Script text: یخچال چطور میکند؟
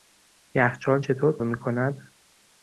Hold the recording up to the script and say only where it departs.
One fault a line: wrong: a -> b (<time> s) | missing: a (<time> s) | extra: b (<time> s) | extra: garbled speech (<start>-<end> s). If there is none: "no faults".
no faults